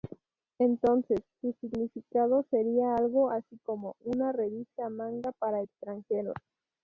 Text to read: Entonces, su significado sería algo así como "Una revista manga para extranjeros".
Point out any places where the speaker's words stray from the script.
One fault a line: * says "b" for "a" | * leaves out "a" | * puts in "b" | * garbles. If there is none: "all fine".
all fine